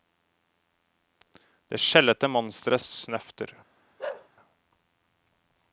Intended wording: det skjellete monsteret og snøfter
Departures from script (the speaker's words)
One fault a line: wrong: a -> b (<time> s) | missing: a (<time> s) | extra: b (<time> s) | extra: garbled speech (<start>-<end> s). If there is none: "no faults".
no faults